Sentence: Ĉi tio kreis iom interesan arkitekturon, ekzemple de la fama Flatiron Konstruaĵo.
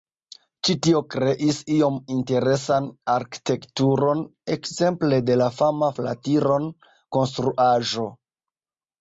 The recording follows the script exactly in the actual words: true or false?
true